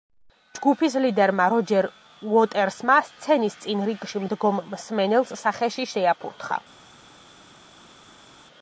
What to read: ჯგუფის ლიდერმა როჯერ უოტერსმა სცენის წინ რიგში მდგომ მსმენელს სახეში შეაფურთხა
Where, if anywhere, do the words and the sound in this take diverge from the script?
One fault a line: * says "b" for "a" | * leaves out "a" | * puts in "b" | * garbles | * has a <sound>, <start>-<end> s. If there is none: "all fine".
all fine